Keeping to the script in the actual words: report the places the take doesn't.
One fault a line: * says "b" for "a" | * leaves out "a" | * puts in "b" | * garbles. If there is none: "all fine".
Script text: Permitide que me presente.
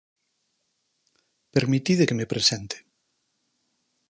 all fine